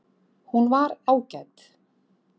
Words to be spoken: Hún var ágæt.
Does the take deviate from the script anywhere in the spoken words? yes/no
no